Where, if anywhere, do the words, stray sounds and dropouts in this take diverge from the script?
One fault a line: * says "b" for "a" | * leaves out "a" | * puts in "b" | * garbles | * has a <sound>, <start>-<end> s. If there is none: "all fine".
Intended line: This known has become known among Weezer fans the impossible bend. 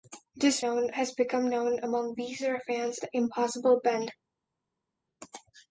all fine